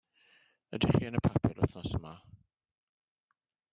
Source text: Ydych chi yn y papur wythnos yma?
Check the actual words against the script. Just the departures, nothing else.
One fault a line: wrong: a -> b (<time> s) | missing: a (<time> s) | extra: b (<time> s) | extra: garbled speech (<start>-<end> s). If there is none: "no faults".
no faults